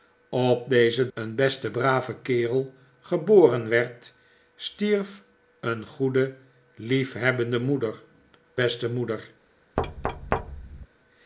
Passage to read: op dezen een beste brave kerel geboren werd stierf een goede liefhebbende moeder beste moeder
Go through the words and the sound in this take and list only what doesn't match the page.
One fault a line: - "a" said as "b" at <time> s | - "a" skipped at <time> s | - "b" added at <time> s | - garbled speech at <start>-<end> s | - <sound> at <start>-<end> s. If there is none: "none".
- thud at 9.8-10.9 s